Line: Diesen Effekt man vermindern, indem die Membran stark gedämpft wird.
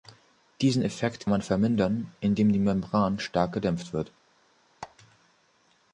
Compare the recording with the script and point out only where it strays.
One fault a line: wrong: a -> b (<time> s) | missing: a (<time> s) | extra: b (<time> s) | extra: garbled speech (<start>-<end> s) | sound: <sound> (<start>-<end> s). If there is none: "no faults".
sound: squeak (4.8-5.0 s)